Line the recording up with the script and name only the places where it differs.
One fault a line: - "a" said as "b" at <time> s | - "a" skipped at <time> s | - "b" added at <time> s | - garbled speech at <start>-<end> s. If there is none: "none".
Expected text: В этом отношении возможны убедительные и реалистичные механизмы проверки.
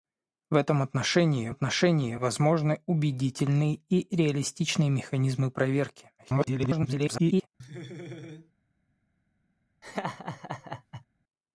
- "отношении" added at 1.5 s
- garbled speech at 6.2-7.5 s